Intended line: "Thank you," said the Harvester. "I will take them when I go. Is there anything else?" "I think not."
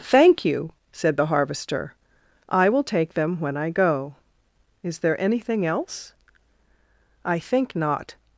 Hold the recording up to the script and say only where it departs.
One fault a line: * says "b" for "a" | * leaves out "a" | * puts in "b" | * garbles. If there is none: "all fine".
all fine